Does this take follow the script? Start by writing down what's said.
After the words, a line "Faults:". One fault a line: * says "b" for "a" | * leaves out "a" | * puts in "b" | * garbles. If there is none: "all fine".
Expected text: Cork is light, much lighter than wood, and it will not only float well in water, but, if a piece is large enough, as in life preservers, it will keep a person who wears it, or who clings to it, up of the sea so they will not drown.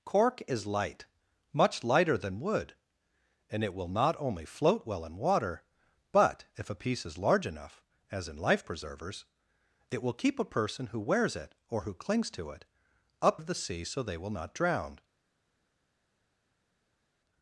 Cork is light, much lighter than wood, and it will not only float well in water, but, if a piece is large enough, as in life preservers, it will keep a person who wears it, or who clings to it, up of the sea so they will not drown.
Faults:
all fine